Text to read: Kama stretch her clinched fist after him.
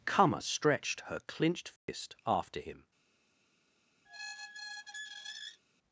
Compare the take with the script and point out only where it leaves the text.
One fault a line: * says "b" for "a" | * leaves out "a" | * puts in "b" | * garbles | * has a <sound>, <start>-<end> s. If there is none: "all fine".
* says "stretched" for "stretch"
* has a dropout, 1.8-1.9 s
* has a squeak, 4.1-5.6 s